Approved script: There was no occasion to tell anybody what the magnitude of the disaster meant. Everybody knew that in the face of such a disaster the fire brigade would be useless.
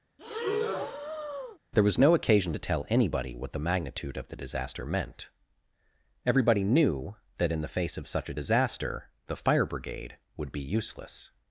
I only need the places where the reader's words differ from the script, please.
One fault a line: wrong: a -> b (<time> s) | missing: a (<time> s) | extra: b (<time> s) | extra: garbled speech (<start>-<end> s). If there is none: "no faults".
no faults